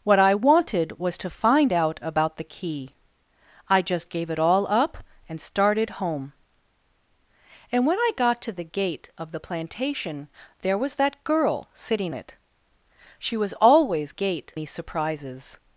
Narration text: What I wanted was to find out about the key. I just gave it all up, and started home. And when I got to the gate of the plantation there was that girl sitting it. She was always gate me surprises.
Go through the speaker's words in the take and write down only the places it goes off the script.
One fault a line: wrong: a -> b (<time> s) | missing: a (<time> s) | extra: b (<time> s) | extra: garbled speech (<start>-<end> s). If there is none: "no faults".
no faults